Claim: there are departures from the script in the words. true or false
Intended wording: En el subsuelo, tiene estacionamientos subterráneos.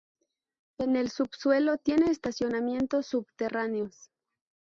false